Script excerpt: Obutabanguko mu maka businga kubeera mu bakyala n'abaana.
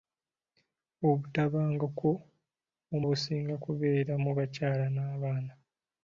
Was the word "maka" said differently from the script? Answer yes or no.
yes